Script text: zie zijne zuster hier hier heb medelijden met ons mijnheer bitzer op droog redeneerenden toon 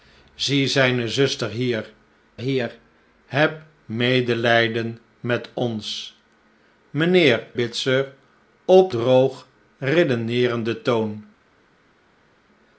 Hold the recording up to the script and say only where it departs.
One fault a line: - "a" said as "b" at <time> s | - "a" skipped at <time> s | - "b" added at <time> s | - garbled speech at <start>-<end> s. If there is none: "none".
none